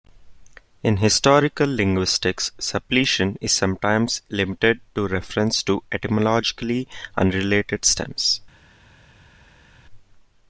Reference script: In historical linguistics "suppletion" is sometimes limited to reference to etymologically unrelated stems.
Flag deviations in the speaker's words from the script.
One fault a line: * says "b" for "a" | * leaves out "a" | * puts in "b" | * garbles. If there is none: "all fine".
all fine